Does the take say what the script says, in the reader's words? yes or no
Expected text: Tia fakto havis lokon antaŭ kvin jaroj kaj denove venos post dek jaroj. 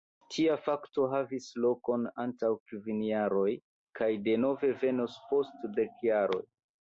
yes